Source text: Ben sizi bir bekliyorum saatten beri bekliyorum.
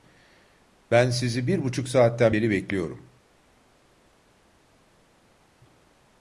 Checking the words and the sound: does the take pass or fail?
fail